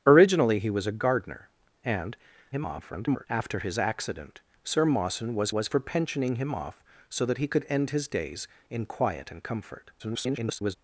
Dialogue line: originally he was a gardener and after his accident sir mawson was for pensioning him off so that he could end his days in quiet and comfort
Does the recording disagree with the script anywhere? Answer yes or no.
yes